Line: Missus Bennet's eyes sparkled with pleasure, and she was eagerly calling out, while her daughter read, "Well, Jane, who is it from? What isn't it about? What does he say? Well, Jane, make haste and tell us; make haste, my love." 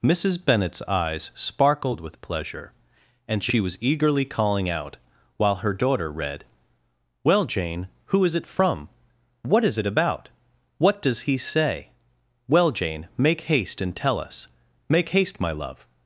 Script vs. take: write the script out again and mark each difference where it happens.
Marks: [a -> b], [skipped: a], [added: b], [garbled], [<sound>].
Missus Bennet's eyes sparkled with pleasure, and she was eagerly calling out, while her daughter read, "Well, Jane, who is it from? What [isn't -> is] it about? What does he say? Well, Jane, make haste and tell us; make haste, my love."